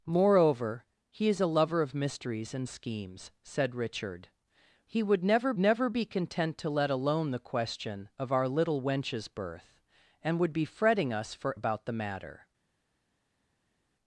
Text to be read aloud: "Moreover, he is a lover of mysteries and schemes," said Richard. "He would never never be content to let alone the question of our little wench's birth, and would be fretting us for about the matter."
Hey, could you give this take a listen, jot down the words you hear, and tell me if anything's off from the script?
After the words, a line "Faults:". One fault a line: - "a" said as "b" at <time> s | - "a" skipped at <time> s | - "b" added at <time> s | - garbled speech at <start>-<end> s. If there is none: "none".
"Moreover, he is a lover of mysteries and schemes," said Richard. "He would never never be content to let alone the question of our little wench's birth, and would be fretting us for about the matter."
Faults:
none